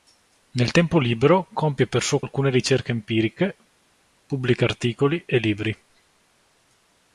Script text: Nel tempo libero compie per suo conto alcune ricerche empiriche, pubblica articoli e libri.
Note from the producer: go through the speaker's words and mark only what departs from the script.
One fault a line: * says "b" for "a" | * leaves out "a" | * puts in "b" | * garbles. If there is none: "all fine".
* leaves out "conto"